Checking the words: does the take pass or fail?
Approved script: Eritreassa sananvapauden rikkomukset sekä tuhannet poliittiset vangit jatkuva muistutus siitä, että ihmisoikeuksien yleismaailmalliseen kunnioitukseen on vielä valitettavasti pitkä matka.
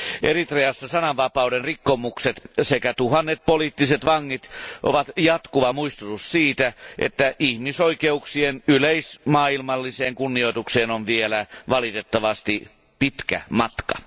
fail